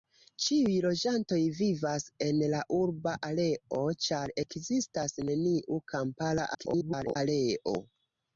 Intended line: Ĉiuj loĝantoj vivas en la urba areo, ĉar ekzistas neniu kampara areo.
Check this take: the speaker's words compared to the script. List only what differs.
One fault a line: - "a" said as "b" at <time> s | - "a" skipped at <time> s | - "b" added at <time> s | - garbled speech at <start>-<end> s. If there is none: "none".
- garbled speech at 6.5-7.2 s